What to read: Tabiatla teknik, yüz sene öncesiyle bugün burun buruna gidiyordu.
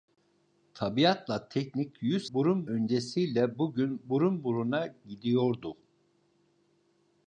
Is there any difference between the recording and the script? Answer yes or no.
yes